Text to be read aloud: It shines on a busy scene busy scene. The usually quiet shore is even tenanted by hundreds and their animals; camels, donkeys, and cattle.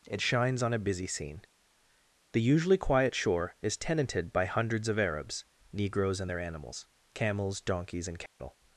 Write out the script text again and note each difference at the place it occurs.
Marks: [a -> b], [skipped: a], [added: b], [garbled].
It shines on a busy scene [skipped: busy scene.] The usually quiet shore is [skipped: even] tenanted by hundreds [added: of Arabs Negroes] and their animals; camels, donkeys, and cattle.